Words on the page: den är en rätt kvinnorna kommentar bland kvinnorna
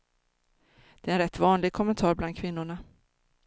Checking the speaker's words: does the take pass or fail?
fail